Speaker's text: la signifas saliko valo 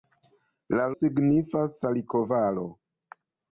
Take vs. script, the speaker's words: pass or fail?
pass